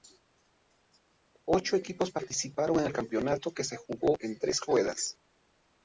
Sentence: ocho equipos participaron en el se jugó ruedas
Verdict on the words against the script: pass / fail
fail